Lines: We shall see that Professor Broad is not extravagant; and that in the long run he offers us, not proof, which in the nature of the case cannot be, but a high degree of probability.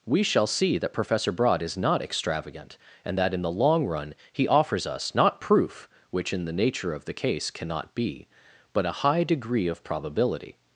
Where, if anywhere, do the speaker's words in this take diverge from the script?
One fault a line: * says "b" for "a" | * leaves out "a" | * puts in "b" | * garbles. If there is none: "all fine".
all fine